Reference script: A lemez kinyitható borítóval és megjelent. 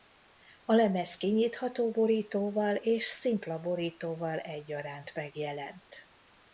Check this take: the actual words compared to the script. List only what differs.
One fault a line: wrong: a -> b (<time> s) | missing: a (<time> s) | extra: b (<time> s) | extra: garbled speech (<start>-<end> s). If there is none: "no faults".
extra: szimpla borítóval egyaránt (3.0 s)